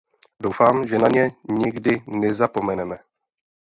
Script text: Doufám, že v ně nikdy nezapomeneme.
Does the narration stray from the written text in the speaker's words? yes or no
yes